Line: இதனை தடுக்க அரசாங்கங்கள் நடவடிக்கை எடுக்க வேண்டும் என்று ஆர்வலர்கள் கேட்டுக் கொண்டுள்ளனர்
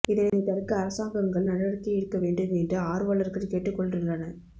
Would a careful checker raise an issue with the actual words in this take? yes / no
no